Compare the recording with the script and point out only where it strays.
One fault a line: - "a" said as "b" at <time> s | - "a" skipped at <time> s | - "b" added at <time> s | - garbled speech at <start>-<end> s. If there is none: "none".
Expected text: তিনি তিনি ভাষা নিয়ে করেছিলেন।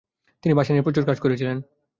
- "তিনি" skipped at 0.5 s
- "প্রচুর কাজ" added at 0.9 s